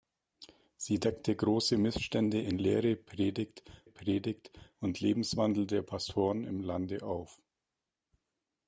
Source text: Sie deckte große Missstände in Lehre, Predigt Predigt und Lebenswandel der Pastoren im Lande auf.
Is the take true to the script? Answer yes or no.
yes